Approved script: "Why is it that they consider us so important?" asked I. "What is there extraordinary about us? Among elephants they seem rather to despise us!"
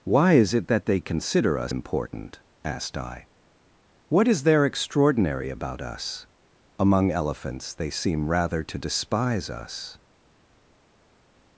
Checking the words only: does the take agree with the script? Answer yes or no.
no